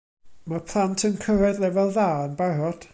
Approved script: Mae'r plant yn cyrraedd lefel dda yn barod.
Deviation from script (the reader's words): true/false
false